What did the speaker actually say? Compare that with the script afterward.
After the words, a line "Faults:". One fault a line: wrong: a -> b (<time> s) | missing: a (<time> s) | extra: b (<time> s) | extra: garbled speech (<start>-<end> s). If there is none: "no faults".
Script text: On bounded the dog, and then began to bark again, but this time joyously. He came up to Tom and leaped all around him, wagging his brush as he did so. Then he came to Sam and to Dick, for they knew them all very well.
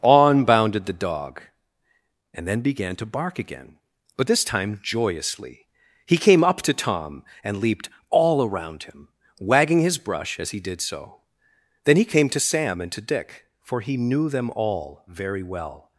On bounded the dog, and then began to bark again, but this time joyously. He came up to Tom and leaped all around him, wagging his brush as he did so. Then he came to Sam and to Dick, for he knew them all very well.
Faults:
wrong: they -> he (13.8 s)